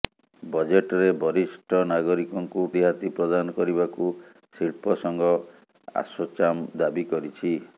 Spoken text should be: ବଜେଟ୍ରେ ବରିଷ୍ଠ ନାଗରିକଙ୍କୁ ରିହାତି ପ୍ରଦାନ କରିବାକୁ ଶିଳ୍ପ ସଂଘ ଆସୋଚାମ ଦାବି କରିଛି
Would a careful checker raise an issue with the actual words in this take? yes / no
no